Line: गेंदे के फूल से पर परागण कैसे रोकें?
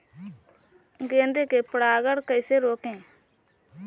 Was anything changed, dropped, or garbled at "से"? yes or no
yes